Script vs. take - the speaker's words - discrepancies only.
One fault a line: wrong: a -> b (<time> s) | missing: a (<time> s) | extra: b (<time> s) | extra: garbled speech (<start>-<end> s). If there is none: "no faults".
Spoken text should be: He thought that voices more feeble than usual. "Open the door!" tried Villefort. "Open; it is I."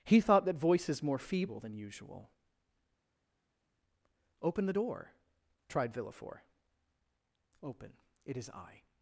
no faults